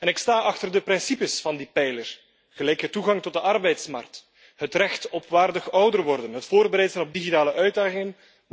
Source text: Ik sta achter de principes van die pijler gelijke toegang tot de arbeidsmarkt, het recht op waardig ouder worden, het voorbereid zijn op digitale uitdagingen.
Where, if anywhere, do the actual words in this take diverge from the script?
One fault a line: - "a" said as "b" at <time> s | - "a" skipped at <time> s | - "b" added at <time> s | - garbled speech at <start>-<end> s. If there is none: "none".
none